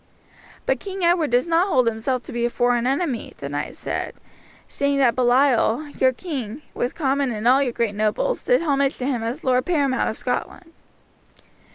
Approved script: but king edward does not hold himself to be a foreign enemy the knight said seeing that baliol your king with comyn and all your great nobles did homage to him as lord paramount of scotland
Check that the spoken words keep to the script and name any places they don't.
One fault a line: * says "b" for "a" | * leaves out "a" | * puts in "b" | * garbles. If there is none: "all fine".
all fine